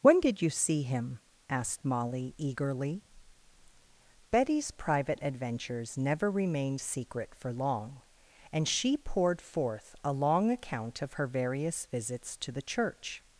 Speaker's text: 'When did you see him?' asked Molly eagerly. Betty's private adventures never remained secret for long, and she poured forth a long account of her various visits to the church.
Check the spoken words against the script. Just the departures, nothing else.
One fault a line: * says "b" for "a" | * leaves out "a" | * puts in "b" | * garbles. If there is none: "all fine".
all fine